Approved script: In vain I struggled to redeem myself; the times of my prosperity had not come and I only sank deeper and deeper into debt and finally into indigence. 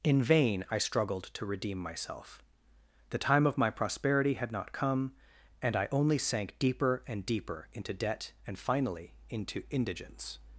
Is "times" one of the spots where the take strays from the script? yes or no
yes